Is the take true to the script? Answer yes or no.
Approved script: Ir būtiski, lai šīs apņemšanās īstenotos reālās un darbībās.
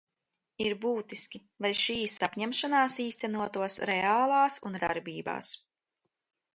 yes